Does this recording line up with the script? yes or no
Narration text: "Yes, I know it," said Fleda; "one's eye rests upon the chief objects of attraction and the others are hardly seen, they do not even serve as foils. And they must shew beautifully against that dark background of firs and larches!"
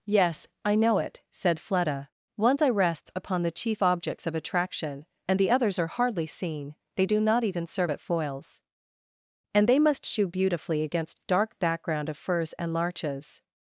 no